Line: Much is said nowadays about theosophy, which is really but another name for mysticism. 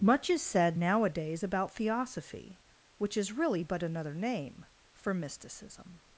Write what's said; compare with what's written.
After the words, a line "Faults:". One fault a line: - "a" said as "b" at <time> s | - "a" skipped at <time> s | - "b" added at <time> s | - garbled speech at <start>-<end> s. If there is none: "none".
Much is said nowadays about theosophy, which is really but another name for mysticism.
Faults:
none